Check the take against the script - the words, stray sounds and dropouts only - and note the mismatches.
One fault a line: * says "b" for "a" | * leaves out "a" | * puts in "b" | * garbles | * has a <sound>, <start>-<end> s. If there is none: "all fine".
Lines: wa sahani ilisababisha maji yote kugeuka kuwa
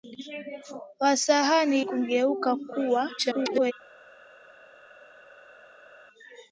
* leaves out "ilisababisha maji yote"
* garbles